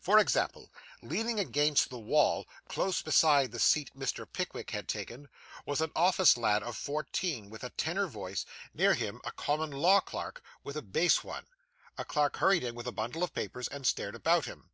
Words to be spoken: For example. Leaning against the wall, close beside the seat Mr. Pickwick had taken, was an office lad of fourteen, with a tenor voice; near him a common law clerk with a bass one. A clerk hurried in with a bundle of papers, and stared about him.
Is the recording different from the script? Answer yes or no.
no